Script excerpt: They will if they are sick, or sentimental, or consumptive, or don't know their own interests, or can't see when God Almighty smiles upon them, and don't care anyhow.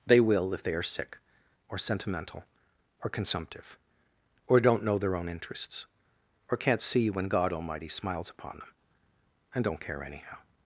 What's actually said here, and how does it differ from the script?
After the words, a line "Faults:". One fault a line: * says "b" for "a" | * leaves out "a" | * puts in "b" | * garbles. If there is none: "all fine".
They will if they are sick, or sentimental, or consumptive, or don't know their own interests, or can't see when God Almighty smiles upon them, and don't care anyhow.
Faults:
all fine